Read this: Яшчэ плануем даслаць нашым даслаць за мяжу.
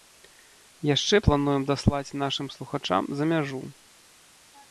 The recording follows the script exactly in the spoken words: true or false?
false